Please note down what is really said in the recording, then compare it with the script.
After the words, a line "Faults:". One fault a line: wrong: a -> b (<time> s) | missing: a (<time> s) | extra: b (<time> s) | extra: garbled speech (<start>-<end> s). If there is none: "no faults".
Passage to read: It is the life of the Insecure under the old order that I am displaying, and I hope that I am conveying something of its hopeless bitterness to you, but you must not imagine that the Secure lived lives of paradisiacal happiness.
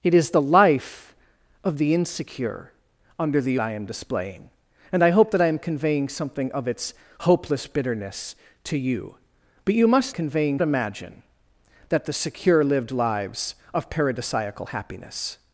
It is the life of the Insecure under the I am displaying, and I hope that I am conveying something of its hopeless bitterness to you, but you must conveying imagine that the Secure lived lives of paradisiacal happiness.
Faults:
missing: old order that (3.6 s)
wrong: not -> conveying (10.1 s)